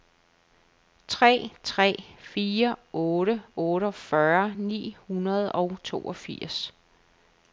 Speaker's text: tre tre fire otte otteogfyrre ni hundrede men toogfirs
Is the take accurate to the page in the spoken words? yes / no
no